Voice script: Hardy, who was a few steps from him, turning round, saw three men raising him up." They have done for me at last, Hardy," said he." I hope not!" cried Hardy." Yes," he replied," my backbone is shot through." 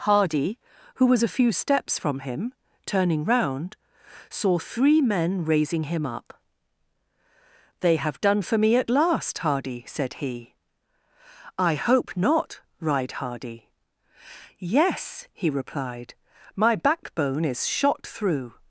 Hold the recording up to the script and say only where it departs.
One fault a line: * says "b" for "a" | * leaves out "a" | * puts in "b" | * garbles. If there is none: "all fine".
all fine